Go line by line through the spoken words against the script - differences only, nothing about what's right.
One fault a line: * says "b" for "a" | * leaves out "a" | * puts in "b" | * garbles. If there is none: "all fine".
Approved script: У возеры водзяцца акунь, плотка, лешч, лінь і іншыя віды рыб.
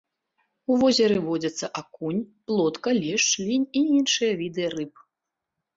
all fine